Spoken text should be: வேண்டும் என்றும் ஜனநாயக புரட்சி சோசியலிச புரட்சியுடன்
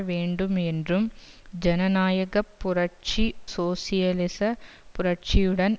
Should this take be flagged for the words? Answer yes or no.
no